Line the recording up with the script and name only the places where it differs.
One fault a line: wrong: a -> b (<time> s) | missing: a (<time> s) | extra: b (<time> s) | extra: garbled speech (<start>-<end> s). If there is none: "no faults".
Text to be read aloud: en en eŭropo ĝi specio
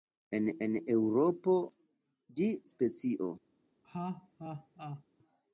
no faults